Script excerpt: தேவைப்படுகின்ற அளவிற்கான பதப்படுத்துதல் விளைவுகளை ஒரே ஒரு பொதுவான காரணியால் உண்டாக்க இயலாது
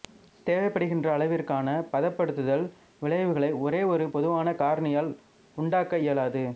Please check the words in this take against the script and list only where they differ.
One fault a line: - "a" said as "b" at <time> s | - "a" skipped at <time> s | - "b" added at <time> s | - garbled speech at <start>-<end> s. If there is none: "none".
none